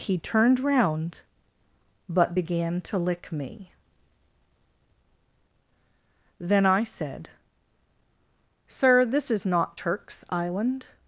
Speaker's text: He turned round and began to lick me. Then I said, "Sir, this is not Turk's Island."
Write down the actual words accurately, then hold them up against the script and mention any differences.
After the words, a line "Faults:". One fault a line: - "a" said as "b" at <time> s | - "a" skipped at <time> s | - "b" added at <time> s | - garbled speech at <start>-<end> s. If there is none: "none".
He turned round but began to lick me. Then I said, "Sir, this is not Turk's Island."
Faults:
- "and" said as "but" at 2.1 s